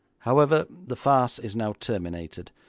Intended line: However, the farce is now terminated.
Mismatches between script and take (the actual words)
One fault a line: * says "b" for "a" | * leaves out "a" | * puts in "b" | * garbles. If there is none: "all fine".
all fine